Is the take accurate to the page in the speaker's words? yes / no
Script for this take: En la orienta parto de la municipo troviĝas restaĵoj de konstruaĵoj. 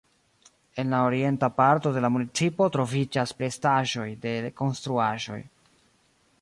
yes